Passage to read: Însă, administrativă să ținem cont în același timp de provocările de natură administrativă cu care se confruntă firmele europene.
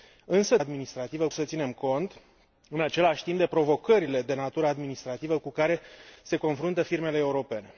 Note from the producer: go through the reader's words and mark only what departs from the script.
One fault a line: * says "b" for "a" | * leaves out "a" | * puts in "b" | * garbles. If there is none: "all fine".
all fine